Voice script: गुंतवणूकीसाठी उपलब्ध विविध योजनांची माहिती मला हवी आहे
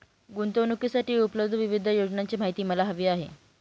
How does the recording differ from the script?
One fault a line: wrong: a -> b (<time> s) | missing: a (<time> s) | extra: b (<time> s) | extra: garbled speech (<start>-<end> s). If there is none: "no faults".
no faults